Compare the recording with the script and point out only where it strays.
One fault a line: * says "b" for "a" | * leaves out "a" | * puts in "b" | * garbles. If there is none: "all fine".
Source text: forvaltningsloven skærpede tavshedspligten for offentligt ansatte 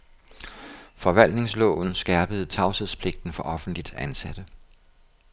all fine